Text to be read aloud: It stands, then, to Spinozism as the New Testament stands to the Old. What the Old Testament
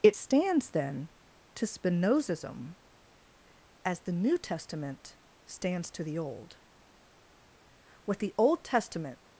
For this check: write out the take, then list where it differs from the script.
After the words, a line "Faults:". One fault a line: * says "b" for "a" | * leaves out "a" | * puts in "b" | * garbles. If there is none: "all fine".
It stands, then, to Spinozism as the New Testament stands to the Old. What the Old Testament
Faults:
all fine